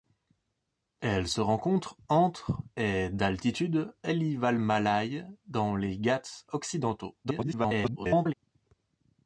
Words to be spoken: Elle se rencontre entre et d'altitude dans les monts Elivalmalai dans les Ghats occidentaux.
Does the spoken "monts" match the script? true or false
false